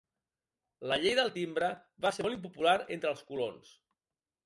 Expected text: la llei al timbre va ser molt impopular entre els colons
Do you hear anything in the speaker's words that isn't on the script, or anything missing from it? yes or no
yes